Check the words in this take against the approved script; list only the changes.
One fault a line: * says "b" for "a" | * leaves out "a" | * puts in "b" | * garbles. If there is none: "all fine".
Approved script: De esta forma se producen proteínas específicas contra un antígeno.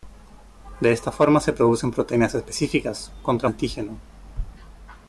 * leaves out "un"